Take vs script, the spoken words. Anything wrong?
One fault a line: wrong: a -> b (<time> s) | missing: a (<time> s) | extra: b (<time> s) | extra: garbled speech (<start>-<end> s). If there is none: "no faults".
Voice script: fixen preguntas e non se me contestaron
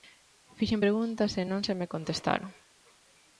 no faults